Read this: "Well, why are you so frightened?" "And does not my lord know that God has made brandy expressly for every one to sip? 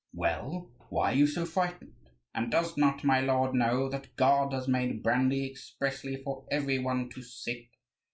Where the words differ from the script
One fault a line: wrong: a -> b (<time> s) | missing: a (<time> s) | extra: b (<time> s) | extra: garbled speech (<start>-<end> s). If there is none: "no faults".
no faults